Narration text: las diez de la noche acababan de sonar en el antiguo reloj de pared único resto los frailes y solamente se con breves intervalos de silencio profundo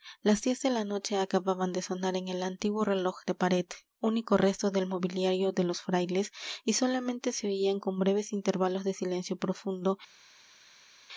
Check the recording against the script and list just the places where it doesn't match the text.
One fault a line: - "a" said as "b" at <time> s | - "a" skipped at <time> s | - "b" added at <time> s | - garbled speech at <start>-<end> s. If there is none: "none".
- "del mobiliario de" added at 4.7 s
- "oían" added at 7.5 s